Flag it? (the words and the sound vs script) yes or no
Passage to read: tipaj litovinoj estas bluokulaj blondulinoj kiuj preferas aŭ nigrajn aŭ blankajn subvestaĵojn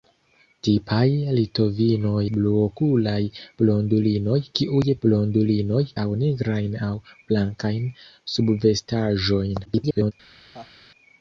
yes